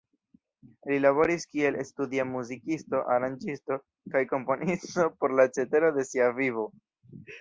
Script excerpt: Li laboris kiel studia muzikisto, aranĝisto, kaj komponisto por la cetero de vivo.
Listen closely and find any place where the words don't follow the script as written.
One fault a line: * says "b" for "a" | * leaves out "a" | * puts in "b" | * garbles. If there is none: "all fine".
* puts in "sia"